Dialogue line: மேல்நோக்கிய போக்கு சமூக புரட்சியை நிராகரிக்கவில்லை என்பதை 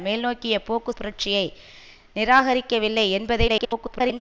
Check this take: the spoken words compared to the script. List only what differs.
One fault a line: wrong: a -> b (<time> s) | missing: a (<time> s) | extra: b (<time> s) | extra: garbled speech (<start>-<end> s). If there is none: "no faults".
missing: சமூக (0.9 s)
extra: garbled speech (3.5-4.2 s)